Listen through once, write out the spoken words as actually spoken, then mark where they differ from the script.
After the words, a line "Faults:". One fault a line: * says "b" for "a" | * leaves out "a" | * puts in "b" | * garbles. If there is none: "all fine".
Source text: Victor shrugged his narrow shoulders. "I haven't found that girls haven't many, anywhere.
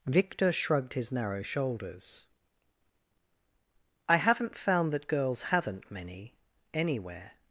Victor shrugged his narrow shoulders. "I haven't found that girls haven't many, anywhere.
Faults:
all fine